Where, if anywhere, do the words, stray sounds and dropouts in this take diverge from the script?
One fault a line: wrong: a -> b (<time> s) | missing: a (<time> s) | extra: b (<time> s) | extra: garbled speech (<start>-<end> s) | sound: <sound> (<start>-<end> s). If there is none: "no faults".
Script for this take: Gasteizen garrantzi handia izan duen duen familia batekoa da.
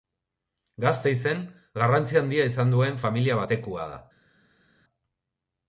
missing: duen (3.0 s)